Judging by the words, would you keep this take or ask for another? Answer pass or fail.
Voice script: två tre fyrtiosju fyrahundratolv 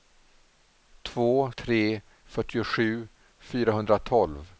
pass